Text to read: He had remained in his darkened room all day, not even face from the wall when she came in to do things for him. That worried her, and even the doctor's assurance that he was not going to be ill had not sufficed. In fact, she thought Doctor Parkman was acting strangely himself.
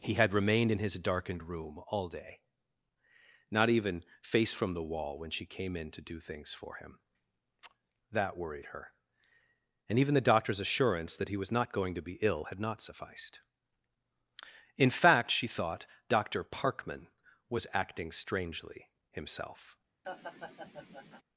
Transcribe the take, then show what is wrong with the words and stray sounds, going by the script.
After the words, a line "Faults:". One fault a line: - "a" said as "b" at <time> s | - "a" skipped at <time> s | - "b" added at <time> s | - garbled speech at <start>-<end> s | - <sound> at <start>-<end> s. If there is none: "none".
He had remained in his darkened room all day, not even face from the wall when she came in to do things for him. That worried her, and even the doctor's assurance that he was not going to be ill had not sufficed. In fact, she thought Doctor Parkman was acting strangely himself.
Faults:
- laugh at 20.0-21.2 s